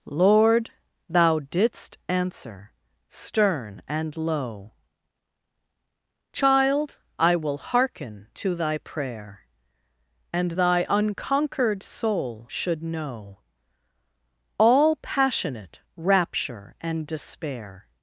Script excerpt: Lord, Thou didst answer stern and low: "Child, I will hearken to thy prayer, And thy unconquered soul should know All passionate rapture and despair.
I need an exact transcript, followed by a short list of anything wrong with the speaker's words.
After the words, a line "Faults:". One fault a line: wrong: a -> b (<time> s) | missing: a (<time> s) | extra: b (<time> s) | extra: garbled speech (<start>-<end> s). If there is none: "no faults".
Lord, Thou didst answer stern and low: "Child, I will hearken to thy prayer, And thy unconquered soul should know All passionate rapture and despair.
Faults:
no faults